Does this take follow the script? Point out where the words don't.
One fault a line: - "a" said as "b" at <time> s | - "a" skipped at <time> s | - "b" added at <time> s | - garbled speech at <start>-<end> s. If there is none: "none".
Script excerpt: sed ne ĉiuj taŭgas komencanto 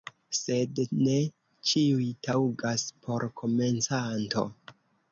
- "por" added at 3.0 s